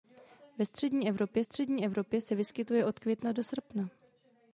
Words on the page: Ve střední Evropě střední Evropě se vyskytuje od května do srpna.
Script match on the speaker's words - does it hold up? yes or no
yes